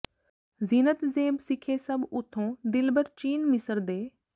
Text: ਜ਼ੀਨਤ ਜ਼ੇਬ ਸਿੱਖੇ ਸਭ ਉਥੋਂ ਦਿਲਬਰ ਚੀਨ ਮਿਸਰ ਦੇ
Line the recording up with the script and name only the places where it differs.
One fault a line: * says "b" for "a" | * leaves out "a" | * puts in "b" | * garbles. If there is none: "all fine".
all fine